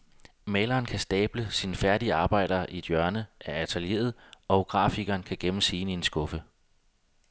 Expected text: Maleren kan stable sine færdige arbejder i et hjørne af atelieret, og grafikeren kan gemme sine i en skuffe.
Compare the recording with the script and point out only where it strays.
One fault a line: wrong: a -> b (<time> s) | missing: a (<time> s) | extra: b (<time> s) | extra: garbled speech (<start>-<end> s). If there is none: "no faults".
no faults